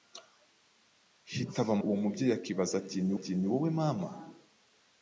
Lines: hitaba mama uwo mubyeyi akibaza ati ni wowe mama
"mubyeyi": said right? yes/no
yes